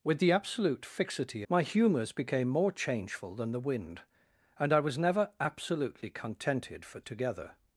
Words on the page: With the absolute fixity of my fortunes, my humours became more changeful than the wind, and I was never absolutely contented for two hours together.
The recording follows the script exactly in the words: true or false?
false